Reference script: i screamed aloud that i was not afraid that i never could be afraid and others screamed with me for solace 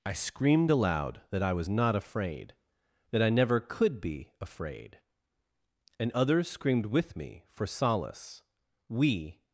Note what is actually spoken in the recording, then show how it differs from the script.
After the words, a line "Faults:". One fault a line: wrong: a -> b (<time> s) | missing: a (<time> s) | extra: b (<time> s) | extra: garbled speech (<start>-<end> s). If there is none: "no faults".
i screamed aloud that i was not afraid that i never could be afraid and others screamed with me for solace we
Faults:
extra: we (8.9 s)